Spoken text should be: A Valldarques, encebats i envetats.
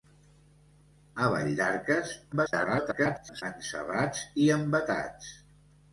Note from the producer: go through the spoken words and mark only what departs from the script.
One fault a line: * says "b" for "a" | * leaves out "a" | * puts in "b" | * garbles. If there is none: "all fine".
* garbles